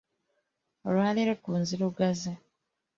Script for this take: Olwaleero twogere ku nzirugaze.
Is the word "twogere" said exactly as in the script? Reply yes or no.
no